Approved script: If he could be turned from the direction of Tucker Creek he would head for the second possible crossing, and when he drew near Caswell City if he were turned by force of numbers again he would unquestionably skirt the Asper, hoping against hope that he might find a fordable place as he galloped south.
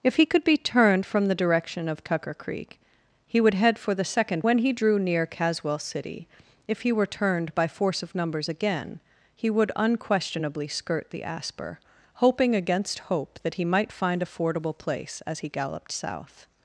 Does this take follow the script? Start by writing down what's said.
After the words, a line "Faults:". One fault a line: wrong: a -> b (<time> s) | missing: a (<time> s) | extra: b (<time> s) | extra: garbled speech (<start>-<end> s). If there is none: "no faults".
If he could be turned from the direction of Tucker Creek he would head for the second when he drew near Caswell City if he were turned by force of numbers again he would unquestionably skirt the Asper, hoping against hope that he might find a fordable place as he galloped south.
Faults:
missing: possible crossing and (4.5 s)